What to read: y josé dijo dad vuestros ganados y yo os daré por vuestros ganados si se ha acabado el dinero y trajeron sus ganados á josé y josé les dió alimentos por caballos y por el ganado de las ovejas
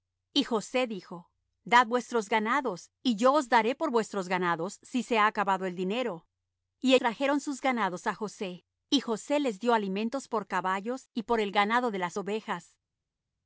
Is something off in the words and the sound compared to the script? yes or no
no